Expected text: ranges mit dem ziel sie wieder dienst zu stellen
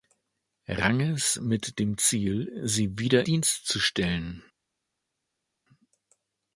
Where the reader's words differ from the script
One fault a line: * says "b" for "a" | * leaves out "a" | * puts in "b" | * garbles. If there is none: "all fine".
all fine